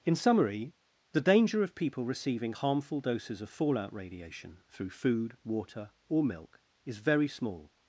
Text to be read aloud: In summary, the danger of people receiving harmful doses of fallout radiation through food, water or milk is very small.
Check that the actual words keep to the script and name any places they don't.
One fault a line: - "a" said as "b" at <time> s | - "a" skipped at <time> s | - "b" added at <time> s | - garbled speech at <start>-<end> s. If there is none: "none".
none